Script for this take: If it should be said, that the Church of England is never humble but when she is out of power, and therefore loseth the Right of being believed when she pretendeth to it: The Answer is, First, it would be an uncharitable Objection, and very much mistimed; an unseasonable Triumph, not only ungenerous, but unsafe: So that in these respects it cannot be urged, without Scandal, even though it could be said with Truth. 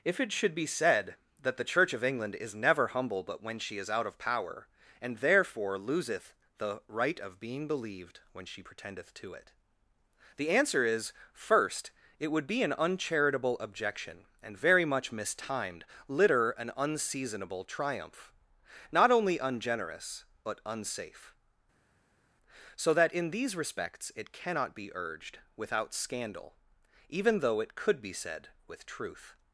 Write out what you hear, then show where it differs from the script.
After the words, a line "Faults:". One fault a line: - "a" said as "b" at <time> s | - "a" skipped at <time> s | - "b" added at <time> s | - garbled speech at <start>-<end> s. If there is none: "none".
If it should be said, that the Church of England is never humble but when she is out of power, and therefore loseth the Right of being believed when she pretendeth to it: The Answer is, First, it would be an uncharitable Objection, and very much mistimed; litter an unseasonable Triumph, not only ungenerous, but unsafe: So that in these respects it cannot be urged, without Scandal, even though it could be said with Truth.
Faults:
- "litter" added at 16.1 s